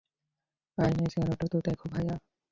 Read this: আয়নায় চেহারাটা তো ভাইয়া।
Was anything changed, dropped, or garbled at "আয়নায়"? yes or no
no